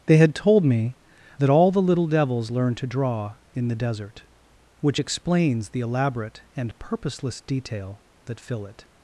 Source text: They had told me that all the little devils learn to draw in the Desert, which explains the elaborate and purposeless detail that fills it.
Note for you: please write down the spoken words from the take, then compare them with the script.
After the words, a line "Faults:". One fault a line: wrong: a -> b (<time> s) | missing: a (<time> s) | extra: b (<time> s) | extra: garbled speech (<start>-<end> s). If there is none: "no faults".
They had told me that all the little devils learn to draw in the Desert, which explains the elaborate and purposeless detail that fill it.
Faults:
wrong: fills -> fill (8.4 s)